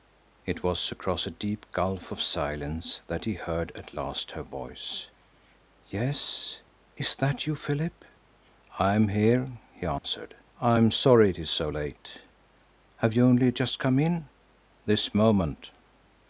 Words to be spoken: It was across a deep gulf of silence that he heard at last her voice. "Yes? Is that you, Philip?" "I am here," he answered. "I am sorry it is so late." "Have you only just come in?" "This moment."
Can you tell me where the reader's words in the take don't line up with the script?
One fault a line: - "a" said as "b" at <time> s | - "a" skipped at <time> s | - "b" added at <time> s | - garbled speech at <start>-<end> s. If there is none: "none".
none